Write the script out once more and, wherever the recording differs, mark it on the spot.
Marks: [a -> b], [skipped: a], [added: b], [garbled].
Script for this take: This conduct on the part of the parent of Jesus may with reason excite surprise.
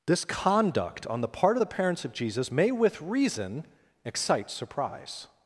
This conduct on the part of the [parent -> parents] of Jesus may with reason excite surprise.